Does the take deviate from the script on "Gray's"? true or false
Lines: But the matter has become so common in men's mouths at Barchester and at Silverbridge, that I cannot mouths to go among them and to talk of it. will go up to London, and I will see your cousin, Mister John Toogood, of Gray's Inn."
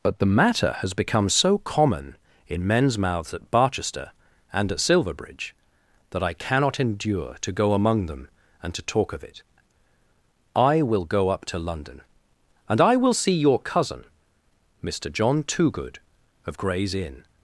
false